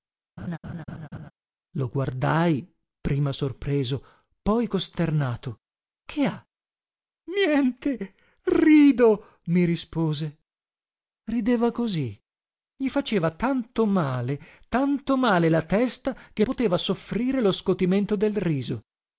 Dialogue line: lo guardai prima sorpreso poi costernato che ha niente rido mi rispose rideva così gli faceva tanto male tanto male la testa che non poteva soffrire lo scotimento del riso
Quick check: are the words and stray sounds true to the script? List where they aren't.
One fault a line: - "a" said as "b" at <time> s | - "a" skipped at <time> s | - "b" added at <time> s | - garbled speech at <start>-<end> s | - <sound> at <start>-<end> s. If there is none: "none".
- laugh at 0.4-1.3 s
- "non" skipped at 16.4 s